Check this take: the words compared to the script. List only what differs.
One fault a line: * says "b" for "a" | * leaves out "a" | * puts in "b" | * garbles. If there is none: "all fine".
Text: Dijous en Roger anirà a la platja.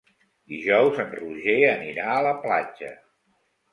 all fine